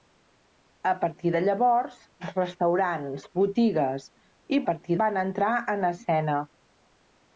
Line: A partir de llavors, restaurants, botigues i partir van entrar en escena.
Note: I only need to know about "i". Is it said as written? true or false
true